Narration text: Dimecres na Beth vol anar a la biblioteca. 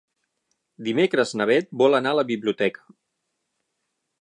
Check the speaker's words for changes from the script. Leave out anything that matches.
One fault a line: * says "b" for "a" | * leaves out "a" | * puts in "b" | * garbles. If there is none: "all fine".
all fine